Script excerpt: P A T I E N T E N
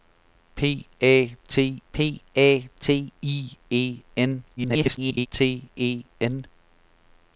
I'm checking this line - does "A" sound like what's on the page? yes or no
yes